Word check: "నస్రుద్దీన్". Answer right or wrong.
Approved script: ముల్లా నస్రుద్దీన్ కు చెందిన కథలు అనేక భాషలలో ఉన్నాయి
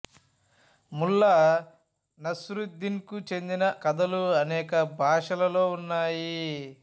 right